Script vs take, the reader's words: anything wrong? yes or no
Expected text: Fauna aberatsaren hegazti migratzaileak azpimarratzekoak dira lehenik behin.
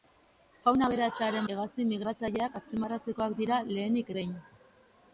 no